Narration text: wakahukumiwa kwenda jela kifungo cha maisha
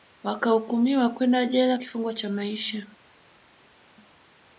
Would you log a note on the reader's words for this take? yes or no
no